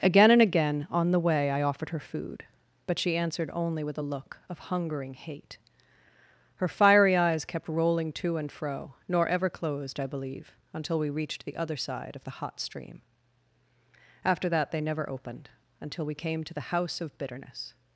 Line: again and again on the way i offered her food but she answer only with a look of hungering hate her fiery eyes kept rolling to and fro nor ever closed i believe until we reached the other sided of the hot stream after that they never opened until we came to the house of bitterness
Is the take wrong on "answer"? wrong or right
wrong